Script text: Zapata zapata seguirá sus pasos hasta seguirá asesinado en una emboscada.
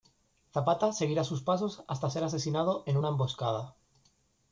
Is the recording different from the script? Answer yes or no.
yes